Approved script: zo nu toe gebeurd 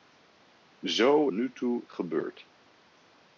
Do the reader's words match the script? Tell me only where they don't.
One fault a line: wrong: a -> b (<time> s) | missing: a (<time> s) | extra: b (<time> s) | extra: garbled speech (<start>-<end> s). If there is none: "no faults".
no faults